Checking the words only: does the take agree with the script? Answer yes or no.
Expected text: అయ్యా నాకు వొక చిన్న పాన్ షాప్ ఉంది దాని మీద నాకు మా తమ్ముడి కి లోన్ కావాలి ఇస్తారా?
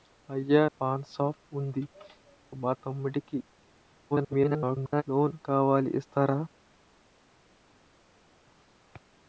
no